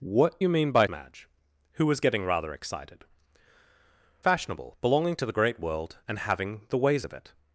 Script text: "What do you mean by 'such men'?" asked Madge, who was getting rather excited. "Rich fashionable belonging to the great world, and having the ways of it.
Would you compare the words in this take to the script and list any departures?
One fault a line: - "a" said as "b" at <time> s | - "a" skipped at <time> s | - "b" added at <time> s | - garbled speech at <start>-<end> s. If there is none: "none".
- "do" skipped at 0.4 s
- "such men asked" skipped at 0.9 s
- "Rich" skipped at 3.1 s